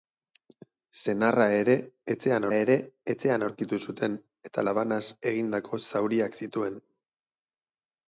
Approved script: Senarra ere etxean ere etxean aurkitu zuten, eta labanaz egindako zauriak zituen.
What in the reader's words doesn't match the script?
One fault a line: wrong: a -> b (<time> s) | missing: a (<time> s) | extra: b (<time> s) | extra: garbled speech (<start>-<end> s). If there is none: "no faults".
no faults